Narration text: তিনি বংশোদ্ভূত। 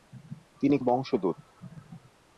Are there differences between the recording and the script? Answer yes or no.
no